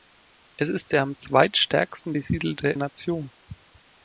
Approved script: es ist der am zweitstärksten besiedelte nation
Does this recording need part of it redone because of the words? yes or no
no